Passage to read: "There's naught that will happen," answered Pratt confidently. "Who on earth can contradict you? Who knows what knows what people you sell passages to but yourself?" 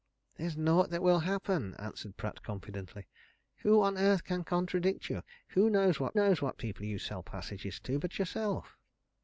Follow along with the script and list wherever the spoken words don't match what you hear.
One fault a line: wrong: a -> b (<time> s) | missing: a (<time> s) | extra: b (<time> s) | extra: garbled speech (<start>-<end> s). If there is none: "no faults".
no faults